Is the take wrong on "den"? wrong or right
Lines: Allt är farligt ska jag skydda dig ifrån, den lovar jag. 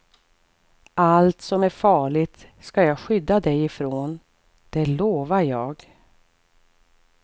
wrong